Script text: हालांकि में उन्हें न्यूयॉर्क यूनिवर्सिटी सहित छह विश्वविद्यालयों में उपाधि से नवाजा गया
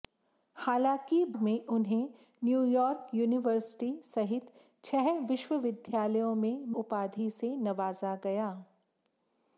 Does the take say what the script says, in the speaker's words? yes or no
yes